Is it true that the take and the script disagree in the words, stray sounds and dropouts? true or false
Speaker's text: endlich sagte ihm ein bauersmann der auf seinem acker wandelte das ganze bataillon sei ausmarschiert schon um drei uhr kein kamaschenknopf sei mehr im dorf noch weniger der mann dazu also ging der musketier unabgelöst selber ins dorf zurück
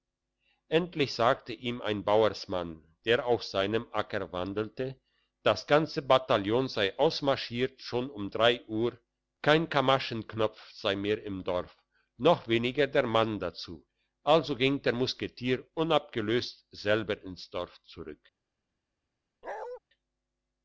true